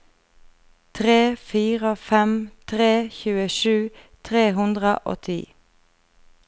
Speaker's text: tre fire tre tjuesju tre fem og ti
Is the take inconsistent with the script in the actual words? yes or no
yes